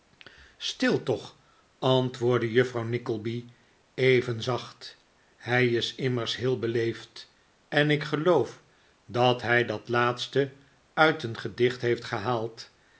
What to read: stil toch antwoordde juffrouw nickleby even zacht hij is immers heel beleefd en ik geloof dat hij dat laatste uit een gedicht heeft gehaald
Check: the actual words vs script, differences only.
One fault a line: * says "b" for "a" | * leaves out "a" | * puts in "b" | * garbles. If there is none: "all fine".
all fine